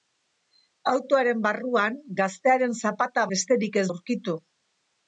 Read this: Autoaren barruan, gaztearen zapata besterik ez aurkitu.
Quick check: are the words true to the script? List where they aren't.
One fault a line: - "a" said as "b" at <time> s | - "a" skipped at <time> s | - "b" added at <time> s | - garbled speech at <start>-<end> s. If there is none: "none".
none